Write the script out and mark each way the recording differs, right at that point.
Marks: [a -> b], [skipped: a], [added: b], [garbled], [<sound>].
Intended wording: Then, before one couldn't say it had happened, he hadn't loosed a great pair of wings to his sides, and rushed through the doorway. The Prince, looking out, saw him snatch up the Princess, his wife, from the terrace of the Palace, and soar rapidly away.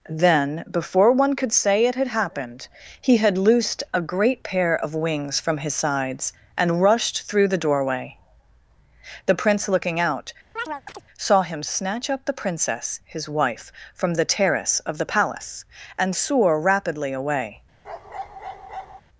Then, before one [couldn't -> could] say it had happened, he [hadn't -> had] loosed a great pair of wings [to -> from] his sides, and rushed through the doorway. The Prince, looking out, [chirp] saw him snatch up the Princess, his wife, from the terrace of the Palace, and soar rapidly away. [bark]